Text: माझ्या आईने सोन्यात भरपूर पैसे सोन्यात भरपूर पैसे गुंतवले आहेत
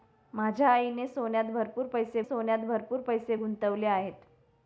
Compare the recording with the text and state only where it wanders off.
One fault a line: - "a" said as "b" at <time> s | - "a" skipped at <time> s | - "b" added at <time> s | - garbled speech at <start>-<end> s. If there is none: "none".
none